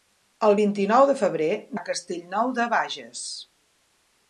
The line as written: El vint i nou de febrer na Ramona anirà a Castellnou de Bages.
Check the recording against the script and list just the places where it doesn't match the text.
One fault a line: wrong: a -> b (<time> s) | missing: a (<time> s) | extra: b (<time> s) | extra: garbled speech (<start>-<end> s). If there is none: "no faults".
missing: na Ramona anirà (1.5 s)